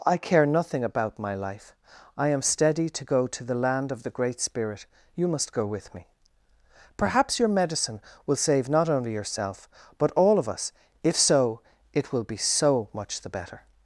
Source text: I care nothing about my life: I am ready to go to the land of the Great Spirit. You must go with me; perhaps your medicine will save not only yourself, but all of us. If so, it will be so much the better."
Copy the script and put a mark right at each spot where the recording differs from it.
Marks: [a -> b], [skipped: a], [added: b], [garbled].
I care nothing about my life: I am [ready -> steady] to go to the land of the Great Spirit. You must go with me; perhaps your medicine will save not only yourself, but all of us. If so, it will be so much the better."